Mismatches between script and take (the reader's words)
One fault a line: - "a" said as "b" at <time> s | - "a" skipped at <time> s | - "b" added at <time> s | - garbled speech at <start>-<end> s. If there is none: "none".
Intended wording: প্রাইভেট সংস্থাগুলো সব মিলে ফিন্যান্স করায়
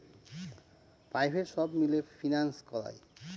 - "সংস্থাগুলো" skipped at 1.5 s